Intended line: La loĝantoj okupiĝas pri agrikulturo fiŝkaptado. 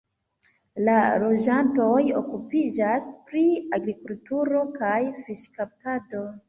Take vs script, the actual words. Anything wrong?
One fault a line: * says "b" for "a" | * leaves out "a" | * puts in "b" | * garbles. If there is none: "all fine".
* puts in "kaj"